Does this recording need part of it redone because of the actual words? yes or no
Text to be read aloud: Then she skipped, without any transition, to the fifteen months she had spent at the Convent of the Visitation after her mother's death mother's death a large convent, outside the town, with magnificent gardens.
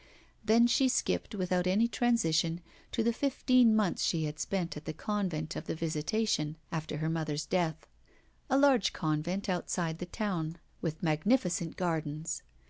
yes